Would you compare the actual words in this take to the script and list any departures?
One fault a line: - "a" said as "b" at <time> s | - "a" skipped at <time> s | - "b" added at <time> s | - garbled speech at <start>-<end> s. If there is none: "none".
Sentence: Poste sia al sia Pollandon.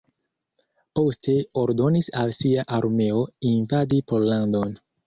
- "sia" said as "ordonis" at 1.6 s
- "armeo invadi" added at 2.8 s